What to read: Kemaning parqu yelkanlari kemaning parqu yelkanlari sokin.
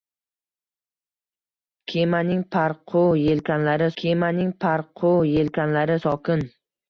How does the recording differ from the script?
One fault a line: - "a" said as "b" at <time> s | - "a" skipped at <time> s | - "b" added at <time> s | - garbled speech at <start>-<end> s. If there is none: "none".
none